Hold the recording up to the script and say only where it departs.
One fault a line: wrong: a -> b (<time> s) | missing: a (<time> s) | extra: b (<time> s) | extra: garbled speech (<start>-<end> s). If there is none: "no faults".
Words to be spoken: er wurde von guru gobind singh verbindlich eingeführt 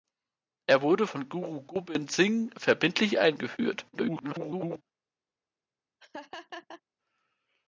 extra: garbled speech (3.9-4.8 s)